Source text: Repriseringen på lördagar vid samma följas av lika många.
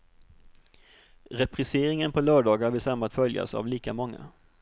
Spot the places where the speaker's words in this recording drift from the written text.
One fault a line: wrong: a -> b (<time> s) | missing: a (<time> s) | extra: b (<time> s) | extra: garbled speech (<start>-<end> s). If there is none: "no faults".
no faults